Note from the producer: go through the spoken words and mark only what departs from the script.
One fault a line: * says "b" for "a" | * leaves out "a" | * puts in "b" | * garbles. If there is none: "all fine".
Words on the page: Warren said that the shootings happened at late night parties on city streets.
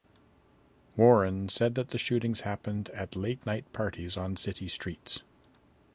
all fine